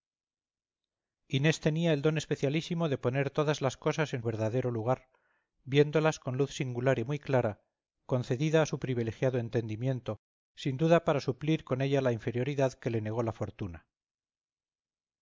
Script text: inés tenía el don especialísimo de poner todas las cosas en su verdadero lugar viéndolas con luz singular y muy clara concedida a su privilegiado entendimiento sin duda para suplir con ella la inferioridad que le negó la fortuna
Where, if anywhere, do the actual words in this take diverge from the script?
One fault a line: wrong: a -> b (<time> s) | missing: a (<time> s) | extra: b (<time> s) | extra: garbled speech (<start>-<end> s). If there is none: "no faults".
missing: su (4.2 s)